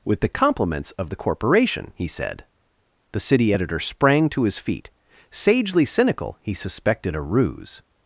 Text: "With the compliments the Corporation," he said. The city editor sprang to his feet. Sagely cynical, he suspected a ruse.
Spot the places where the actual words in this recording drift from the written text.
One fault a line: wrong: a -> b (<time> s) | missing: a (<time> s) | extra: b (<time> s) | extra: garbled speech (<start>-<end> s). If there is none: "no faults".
extra: of (1.0 s)